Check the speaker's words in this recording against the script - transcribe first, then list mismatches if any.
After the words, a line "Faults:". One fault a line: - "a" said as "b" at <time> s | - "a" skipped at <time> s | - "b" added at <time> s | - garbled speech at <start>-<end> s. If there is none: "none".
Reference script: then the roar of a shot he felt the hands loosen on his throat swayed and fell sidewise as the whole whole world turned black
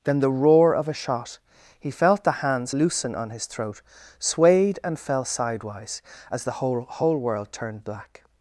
then the roar of a shot he felt the hands loosen on his throat swayed and fell sidewise as the whole whole world turned black
Faults:
none